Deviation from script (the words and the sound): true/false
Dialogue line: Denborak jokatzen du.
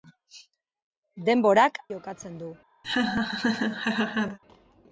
true